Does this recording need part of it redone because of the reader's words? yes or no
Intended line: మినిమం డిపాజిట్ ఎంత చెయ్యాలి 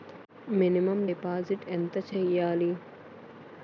no